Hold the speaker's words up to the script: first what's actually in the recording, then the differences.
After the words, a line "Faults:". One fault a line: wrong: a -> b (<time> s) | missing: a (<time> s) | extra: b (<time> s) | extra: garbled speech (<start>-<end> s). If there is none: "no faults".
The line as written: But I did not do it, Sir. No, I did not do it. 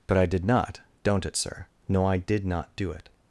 But I did not don't it, Sir. No, I did not do it.
Faults:
wrong: do -> don't (1.0 s)